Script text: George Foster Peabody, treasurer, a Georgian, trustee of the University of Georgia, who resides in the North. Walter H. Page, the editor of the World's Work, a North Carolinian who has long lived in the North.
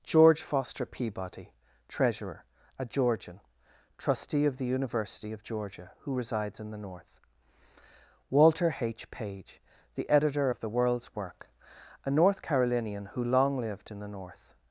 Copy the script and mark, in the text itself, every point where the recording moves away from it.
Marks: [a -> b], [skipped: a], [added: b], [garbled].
George Foster Peabody, treasurer, a Georgian, trustee of the University of Georgia, who resides in the North. Walter H. Page, the editor of the World's Work, a North Carolinian who [skipped: has] long lived in the North.